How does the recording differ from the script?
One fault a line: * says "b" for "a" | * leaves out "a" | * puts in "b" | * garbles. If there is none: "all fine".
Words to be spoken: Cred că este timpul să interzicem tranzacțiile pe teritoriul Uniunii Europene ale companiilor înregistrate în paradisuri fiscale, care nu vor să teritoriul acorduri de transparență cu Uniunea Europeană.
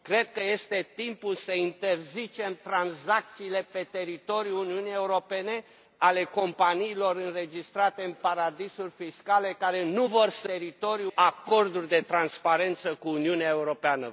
all fine